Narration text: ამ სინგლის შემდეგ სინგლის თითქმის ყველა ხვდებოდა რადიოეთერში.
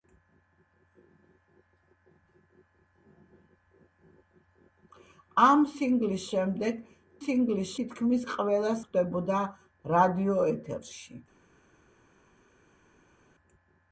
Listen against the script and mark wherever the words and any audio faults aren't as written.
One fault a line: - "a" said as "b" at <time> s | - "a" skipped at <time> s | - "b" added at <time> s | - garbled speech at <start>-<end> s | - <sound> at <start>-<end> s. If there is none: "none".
none